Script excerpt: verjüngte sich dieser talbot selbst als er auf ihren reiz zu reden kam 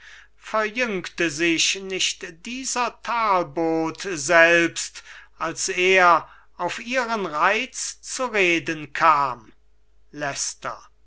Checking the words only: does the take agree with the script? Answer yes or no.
no